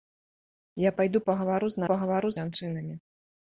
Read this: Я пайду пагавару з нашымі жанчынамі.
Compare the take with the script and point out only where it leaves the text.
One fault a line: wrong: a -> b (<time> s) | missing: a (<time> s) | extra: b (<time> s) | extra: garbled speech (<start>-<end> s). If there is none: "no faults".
wrong: нашымі -> пагавару (1.9 s)